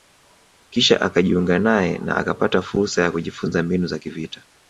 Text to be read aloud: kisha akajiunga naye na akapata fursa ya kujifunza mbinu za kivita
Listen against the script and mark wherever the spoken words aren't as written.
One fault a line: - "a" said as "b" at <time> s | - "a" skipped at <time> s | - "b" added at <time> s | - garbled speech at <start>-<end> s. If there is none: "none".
none